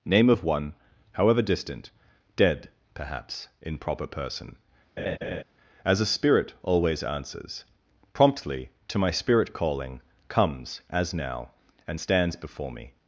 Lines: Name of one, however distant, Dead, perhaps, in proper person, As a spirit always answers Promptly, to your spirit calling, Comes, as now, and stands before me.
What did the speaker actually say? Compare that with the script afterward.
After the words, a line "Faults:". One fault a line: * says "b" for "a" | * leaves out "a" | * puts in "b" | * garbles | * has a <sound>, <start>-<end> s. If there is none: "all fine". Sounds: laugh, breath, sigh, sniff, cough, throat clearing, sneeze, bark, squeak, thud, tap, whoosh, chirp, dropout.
Name of one, however distant, Dead, perhaps, in proper person, As a spirit always answers Promptly, to my spirit calling, Comes, as now, and stands before me.
Faults:
* has a laugh, 5.0-5.4 s
* says "my" for "your"